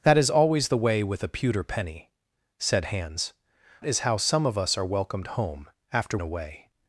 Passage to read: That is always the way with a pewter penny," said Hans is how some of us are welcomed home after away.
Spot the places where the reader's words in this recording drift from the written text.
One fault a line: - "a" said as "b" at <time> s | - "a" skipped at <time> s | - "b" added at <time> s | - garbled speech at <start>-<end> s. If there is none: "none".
none